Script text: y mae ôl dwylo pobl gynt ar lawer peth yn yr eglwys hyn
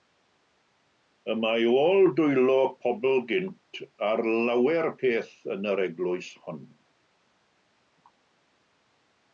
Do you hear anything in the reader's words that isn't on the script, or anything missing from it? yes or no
yes